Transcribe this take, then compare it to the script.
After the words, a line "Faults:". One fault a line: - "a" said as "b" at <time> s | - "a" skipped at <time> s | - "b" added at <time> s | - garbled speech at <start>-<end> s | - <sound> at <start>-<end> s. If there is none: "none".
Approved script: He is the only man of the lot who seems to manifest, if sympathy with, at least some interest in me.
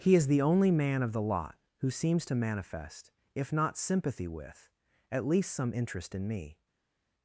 He is the only man of the lot who seems to manifest, if not sympathy with, at least some interest in me.
Faults:
- "not" added at 3.5 s